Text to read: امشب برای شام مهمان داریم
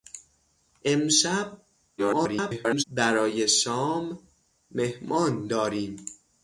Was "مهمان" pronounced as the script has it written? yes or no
yes